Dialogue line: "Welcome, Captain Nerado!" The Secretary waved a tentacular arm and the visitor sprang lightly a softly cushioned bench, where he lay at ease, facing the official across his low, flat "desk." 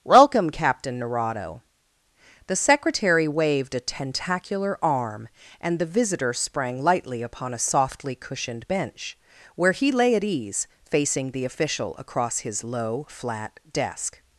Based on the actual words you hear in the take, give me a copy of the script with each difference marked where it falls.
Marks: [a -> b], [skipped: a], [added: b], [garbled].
"Welcome, Captain Nerado!" The Secretary waved a tentacular arm and the visitor sprang lightly [added: upon] a softly cushioned bench, where he lay at ease, facing the official across his low, flat "desk."